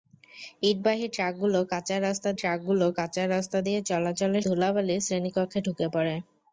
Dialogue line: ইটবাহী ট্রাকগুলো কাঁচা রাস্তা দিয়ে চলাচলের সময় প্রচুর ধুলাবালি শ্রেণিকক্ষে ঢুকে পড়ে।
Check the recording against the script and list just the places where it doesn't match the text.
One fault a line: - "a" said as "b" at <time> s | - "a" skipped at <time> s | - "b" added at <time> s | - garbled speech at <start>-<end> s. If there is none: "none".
- "ট্রাকগুলো কাঁচা রাস্তা" added at 2.3 s
- "সময় প্রচুর" skipped at 4.5 s